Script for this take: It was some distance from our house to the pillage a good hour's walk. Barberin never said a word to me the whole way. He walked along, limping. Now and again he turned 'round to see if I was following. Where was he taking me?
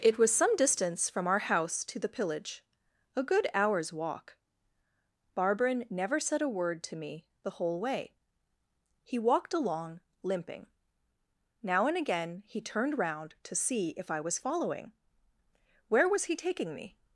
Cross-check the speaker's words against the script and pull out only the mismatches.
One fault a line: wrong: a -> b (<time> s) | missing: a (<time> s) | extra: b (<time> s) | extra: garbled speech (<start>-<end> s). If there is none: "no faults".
no faults